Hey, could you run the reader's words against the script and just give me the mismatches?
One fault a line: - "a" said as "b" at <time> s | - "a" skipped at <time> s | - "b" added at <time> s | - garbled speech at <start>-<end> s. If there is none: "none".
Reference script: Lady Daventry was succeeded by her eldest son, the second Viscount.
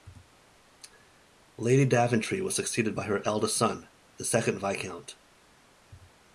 none